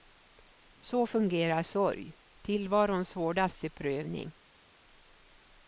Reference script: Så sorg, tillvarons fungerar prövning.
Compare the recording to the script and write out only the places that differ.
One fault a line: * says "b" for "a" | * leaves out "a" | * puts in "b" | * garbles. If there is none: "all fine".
* puts in "fungerar"
* says "hårdaste" for "fungerar"